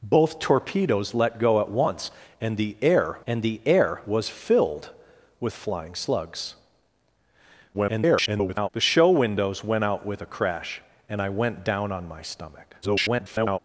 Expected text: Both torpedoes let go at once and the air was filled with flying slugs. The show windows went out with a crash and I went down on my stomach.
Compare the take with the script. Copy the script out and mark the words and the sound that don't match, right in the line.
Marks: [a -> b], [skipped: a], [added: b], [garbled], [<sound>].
Both torpedoes let go at once and the air [added: and the air] was filled with flying slugs. [garbled] The show windows went out with a crash and I went down on my stomach. [garbled]